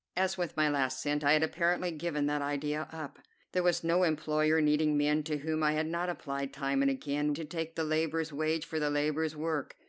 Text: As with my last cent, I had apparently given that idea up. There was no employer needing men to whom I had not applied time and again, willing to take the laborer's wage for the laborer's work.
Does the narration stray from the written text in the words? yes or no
yes